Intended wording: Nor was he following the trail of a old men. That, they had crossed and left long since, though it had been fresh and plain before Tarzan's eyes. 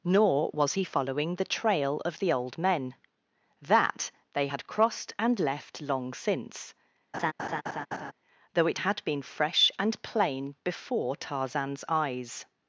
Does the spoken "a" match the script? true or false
false